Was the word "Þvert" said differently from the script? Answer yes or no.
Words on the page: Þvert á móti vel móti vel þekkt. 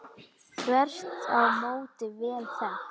no